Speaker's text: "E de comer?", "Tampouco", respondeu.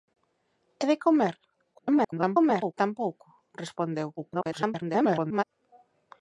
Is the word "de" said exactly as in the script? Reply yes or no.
yes